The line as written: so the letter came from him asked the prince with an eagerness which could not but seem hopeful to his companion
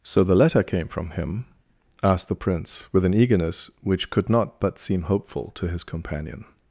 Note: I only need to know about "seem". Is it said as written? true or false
true